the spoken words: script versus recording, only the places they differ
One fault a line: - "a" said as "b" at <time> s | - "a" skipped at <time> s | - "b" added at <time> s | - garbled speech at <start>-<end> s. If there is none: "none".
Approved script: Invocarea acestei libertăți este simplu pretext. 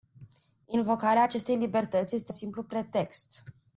none